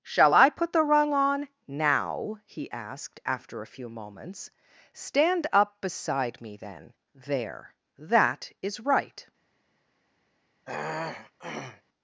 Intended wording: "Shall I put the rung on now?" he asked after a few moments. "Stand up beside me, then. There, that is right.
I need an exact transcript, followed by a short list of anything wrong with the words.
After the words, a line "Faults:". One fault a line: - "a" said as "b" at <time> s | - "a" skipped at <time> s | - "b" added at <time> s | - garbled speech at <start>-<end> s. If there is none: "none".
"Shall I put the rung on now?" he asked after a few moments. "Stand up beside me, then. There, that is right.
Faults:
none